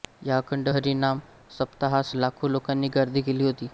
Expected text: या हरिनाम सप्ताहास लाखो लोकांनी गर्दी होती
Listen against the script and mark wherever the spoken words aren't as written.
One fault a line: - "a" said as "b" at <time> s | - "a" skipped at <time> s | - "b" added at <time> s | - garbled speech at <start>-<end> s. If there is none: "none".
- "अखंड" added at 0.4 s
- "केली" added at 3.2 s